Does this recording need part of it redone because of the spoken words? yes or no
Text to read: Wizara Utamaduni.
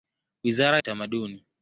no